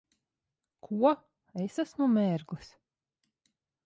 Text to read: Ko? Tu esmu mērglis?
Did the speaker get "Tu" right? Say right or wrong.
wrong